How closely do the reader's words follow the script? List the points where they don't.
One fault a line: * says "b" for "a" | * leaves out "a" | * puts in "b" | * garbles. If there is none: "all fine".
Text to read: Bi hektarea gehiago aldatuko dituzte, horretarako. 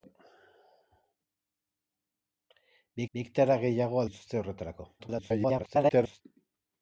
* puts in "bi"
* leaves out "aldatuko"
* garbles